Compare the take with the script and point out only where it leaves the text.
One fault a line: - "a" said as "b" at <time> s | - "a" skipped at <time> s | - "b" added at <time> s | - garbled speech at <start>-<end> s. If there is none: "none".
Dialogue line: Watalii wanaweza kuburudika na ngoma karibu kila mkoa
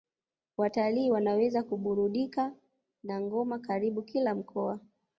none